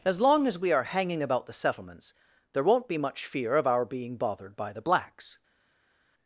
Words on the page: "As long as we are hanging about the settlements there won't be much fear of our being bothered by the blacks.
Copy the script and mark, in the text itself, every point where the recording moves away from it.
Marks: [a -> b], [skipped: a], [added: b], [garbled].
"As long as we are hanging about the settlements there won't be much fear of our being bothered by the blacks.